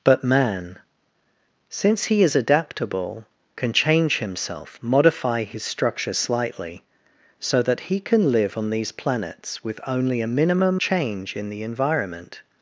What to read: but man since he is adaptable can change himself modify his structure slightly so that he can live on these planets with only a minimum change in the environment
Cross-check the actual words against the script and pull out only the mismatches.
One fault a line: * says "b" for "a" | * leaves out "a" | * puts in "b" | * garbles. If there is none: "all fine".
all fine